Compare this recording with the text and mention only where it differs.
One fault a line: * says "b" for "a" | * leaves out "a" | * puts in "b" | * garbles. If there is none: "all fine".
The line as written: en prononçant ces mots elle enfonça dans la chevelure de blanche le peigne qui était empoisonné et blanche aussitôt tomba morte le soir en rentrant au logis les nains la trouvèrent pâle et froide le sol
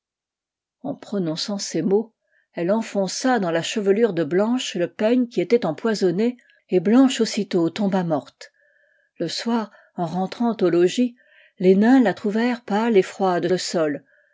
all fine